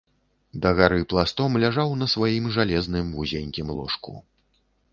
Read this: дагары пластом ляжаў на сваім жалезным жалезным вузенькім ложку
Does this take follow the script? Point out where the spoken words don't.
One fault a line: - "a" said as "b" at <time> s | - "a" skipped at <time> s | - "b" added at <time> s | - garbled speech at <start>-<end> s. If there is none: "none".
- "жалезным" skipped at 3.1 s